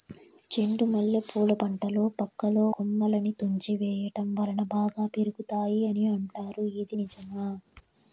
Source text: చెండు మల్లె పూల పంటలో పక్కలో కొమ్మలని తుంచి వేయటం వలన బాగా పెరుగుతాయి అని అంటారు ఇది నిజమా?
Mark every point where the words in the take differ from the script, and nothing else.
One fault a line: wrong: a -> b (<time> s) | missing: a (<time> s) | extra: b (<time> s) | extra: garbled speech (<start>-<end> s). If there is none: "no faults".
no faults